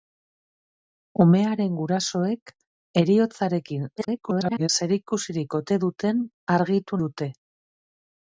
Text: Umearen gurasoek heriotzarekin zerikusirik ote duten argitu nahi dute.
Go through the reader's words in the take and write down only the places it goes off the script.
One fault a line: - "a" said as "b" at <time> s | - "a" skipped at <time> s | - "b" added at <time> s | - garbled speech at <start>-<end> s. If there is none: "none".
- garbled speech at 4.0-4.7 s
- "nahi" skipped at 7.0 s